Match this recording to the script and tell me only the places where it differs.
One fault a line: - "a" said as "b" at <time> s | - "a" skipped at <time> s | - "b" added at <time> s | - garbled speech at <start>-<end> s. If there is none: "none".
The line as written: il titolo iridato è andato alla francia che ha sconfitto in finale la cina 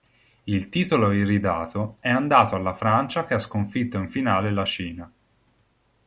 none